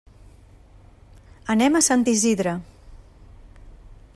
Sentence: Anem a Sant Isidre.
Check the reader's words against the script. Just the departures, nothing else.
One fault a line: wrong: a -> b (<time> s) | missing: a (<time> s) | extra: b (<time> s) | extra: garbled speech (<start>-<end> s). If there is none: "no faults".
no faults